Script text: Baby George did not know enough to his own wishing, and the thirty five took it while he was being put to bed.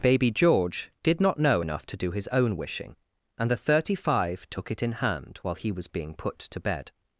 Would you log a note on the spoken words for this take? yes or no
yes